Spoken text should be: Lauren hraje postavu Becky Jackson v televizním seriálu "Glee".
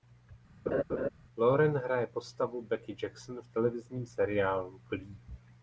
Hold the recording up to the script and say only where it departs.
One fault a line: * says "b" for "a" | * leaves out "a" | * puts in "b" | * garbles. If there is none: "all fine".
all fine